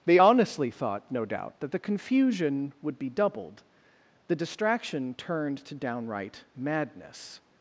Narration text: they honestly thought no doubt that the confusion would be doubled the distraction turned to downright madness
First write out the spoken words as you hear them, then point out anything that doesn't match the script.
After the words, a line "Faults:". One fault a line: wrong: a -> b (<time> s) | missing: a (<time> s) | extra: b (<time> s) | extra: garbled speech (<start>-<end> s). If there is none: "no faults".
they honestly thought no doubt that the confusion would be doubled the distraction turned to downright madness
Faults:
no faults